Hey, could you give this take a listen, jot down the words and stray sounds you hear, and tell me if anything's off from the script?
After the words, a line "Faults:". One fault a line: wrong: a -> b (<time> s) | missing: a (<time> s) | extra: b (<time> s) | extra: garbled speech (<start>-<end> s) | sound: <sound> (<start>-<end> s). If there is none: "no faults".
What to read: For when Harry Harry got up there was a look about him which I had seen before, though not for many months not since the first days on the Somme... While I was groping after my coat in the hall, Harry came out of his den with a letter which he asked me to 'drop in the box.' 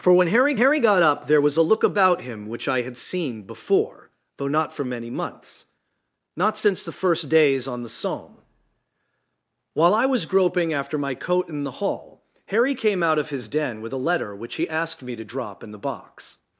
For when Harry Harry got up there was a look about him which I had seen before, though not for many months not since the first days on the Somme... While I was groping after my coat in the hall, Harry came out of his den with a letter which he asked me to 'drop in the box.'
Faults:
no faults